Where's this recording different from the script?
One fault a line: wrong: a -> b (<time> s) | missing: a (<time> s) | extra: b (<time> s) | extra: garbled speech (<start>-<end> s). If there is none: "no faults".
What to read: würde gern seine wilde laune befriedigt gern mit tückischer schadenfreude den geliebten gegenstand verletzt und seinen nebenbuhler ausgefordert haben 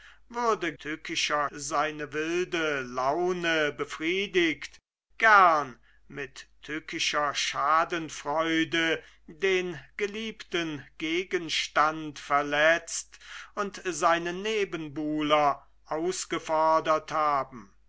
wrong: gern -> tückischer (0.8 s)